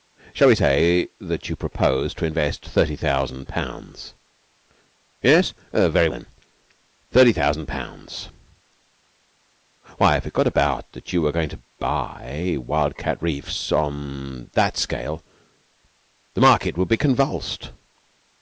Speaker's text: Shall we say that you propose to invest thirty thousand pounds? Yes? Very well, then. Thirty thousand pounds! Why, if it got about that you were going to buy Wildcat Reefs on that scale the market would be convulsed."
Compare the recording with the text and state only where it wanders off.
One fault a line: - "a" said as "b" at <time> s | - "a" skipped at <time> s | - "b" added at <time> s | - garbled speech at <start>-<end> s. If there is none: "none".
- "well" skipped at 6.1 s